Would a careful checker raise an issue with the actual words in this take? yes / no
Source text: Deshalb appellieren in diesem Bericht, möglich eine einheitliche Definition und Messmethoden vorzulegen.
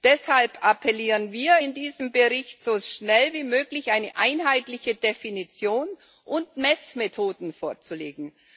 yes